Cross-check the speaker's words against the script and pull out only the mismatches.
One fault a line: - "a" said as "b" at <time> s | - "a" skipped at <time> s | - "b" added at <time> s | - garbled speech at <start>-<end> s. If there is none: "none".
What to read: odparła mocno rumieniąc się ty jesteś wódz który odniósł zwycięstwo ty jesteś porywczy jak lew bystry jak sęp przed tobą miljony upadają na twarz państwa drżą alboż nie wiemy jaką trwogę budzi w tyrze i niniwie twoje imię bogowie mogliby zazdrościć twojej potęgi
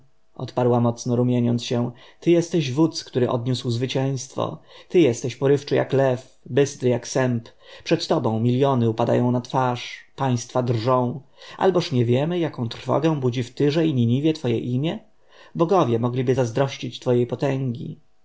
none